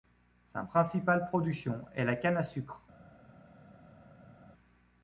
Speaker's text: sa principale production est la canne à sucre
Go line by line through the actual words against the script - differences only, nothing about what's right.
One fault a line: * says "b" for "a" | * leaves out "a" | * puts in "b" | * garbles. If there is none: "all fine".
all fine